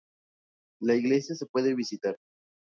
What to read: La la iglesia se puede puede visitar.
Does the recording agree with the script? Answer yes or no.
no